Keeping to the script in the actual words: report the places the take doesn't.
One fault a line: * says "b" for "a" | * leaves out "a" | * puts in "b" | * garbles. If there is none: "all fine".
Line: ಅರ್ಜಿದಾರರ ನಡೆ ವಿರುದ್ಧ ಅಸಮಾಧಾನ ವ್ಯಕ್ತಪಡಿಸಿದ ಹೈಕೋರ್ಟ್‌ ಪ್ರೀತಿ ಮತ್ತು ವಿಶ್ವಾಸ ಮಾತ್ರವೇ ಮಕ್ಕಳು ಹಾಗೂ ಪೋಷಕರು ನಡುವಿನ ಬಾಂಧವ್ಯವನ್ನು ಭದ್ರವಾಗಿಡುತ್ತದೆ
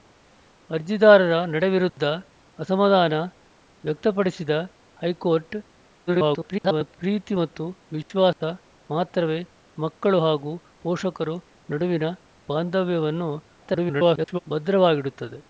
* garbles
* garbles